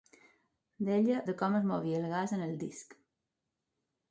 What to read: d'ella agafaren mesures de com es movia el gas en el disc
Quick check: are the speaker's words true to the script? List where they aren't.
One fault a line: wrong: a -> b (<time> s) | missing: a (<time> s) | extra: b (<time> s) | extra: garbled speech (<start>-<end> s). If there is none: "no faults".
missing: agafaren mesures (1.2 s)